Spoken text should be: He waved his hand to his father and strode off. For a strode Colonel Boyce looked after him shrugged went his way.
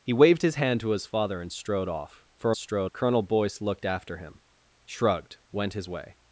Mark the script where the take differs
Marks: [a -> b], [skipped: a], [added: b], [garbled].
He waved his hand to his father and strode off. For a strode Colonel Boyce looked after him shrugged went his way.